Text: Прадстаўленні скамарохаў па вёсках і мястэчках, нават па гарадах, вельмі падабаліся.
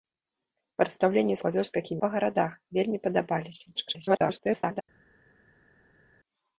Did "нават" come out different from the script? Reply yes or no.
yes